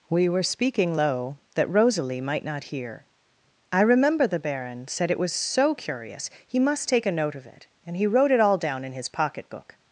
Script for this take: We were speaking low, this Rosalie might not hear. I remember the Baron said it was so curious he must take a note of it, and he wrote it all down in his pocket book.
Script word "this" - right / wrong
wrong